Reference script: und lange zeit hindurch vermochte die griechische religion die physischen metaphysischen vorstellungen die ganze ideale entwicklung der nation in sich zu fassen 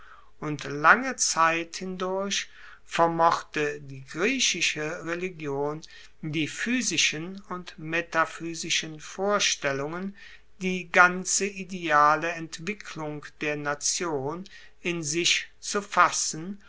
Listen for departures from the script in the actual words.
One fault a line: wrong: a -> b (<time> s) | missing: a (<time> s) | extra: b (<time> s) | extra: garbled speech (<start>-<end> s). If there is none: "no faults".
extra: und (7.5 s)